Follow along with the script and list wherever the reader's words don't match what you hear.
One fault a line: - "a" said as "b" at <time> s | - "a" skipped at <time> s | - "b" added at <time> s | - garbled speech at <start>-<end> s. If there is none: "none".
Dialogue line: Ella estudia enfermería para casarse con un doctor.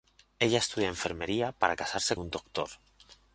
- "con" skipped at 2.2 s